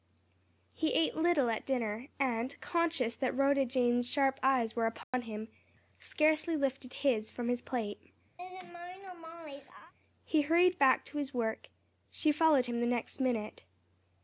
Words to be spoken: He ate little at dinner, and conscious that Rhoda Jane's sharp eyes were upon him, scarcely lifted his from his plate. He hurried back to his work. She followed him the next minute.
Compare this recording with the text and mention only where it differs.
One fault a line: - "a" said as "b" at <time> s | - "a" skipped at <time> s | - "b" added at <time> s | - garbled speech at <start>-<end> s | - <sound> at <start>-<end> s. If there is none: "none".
- dropout at 5.0-5.1 s
- laugh at 8.4-9.9 s